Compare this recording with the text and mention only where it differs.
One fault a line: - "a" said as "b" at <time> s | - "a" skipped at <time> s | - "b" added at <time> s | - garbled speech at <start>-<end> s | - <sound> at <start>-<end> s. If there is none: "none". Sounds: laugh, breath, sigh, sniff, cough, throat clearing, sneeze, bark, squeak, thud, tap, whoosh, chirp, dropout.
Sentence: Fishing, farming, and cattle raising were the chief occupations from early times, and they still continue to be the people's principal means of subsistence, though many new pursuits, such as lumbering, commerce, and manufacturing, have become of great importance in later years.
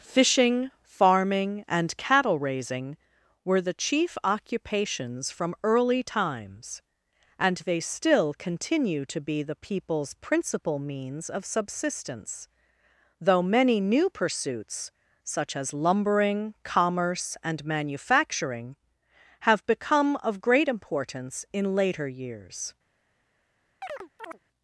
- chirp at 23.8-24.4 s